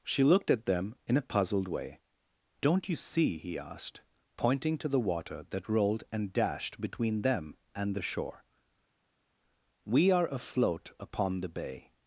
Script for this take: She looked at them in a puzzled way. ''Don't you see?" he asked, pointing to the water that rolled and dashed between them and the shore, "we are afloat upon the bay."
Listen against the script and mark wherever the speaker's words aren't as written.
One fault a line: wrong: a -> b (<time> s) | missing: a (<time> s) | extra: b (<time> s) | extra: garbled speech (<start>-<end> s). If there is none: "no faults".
no faults